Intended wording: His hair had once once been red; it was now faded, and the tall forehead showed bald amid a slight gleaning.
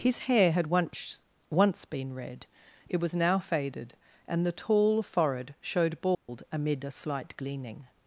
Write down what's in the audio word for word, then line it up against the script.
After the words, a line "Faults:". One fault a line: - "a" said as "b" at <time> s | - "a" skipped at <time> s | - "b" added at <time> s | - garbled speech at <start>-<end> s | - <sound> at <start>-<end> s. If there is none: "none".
His hair had once once been red; it was now faded, and the tall forehead showed bald amid a slight gleaning.
Faults:
- dropout at 6.1-6.3 s